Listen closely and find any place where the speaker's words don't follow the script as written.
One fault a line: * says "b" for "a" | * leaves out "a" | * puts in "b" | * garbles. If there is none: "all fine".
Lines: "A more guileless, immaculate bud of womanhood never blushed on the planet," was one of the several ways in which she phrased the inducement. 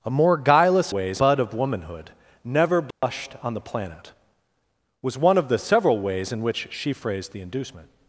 * says "ways" for "immaculate"